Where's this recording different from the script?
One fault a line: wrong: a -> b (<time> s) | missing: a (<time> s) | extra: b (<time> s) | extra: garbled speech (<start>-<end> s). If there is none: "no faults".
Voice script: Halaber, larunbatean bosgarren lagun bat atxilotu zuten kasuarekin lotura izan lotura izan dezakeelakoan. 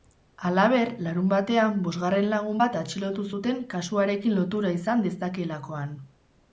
missing: lotura izan (5.1 s)